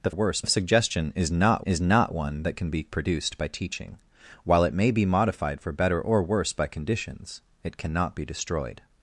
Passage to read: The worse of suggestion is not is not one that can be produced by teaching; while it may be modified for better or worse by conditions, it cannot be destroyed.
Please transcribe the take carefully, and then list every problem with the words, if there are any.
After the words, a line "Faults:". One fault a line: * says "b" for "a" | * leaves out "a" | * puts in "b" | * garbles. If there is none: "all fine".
The worse of suggestion is not is not one that can be produced by teaching; while it may be modified for better or worse by conditions, it cannot be destroyed.
Faults:
all fine